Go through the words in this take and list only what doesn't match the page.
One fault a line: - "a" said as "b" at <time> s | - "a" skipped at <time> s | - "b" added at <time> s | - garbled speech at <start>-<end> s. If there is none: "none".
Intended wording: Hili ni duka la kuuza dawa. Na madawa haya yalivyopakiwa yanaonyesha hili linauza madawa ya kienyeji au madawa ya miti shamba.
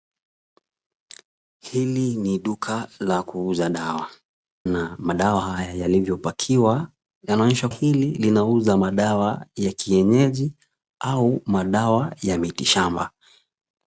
none